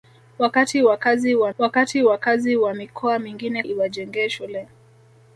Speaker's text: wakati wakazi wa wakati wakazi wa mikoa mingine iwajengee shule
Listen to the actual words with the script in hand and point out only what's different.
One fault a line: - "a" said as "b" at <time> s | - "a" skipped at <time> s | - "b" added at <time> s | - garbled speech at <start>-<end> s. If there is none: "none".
none